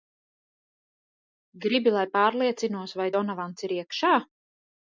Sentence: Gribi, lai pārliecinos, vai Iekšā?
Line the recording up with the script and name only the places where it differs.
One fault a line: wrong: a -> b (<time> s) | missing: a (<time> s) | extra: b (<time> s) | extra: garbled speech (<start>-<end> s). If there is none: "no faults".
extra: Donavans ir (3.2 s)